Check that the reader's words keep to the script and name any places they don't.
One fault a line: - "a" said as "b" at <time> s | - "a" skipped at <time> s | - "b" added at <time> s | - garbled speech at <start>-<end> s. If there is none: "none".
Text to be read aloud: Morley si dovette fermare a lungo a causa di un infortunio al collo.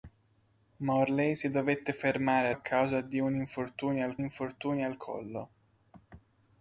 - "lungo" skipped at 2.5 s
- "infortunio al" added at 4.2 s